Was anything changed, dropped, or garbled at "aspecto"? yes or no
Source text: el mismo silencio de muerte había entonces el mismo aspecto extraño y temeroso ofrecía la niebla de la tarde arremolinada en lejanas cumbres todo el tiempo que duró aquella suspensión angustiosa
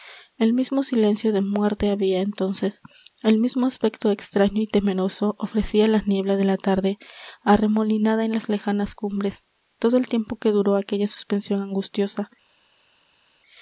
no